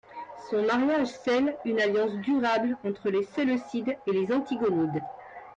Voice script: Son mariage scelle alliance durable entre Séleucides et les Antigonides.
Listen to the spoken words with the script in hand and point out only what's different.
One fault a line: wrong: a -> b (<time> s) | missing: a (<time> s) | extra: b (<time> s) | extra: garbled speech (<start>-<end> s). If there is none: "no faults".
extra: une (1.6 s)
extra: les (3.1 s)